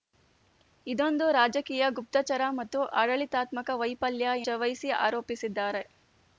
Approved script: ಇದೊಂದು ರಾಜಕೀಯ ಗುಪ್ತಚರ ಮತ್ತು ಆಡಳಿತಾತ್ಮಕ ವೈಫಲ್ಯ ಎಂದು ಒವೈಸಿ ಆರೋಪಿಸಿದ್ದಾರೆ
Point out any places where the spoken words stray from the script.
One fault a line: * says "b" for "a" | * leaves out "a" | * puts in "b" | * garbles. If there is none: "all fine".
* leaves out "ಎಂದು"